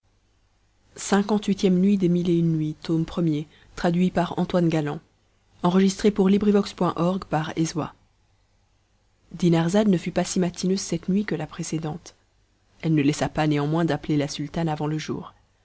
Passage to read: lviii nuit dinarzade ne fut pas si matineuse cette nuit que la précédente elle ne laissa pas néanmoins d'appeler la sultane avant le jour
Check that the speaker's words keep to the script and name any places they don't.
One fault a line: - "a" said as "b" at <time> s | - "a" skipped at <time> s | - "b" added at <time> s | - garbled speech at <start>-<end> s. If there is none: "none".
none